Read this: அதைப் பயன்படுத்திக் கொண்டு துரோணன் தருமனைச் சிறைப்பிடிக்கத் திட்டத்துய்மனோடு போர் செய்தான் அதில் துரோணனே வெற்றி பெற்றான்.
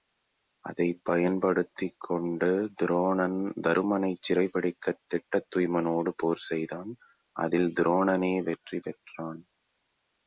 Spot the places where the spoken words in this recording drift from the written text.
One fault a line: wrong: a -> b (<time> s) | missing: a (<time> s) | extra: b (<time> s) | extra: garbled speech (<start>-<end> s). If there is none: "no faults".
no faults